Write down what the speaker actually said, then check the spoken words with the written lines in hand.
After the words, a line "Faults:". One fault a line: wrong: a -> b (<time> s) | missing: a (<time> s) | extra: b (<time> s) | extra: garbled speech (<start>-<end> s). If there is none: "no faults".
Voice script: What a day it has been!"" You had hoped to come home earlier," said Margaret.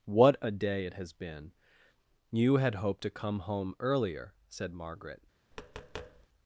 What a day it has been!"" You had hoped to come home earlier," said Margaret.
Faults:
no faults